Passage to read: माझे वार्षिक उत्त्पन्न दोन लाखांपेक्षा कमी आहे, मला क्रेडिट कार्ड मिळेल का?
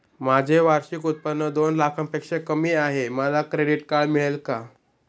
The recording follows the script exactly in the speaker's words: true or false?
true